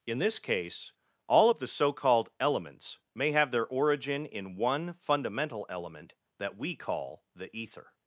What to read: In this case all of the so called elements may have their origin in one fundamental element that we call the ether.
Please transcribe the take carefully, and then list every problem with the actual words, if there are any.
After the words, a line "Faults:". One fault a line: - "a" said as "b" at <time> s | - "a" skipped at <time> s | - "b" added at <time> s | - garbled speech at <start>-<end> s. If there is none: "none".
In this case all of the so called elements may have their origin in one fundamental element that we call the ether.
Faults:
none